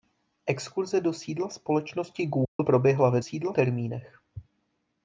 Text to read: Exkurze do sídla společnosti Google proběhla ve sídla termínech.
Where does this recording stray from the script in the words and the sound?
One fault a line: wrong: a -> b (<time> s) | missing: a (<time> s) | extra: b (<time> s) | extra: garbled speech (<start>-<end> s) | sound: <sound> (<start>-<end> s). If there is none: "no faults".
sound: dropout (2.4-2.6 s)